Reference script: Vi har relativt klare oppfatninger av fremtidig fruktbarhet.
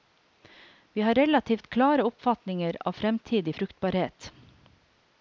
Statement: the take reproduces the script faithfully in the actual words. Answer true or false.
true